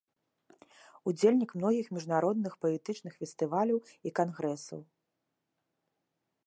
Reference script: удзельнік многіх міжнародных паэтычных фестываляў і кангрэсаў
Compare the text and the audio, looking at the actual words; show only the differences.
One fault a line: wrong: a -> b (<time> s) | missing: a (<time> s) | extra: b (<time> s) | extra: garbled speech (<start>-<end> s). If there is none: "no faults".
no faults